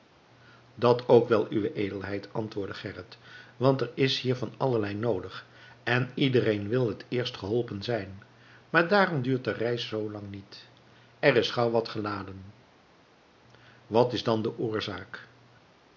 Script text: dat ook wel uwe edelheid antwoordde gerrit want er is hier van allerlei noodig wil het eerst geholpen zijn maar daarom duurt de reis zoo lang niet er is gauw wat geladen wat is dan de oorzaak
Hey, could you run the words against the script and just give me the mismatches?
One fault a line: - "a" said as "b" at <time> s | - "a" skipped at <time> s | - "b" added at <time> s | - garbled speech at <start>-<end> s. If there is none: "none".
- "en iedereen" added at 5.8 s